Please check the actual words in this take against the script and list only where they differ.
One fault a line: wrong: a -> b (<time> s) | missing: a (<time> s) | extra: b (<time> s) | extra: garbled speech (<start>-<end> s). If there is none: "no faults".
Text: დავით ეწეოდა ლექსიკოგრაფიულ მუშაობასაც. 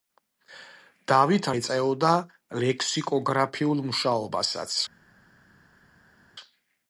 no faults